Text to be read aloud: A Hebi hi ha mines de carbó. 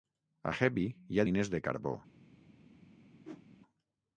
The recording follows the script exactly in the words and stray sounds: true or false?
false